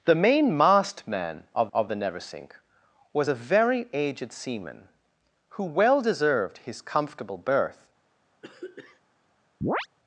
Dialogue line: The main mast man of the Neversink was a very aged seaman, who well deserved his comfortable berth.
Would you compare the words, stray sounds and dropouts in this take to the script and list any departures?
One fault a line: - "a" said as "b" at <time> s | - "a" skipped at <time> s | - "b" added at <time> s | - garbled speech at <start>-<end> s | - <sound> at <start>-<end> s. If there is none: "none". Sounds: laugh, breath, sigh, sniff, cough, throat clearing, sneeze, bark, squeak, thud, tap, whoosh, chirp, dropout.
- "of" added at 1.7 s
- throat clearing at 8.4-9.0 s
- chirp at 9.6-9.9 s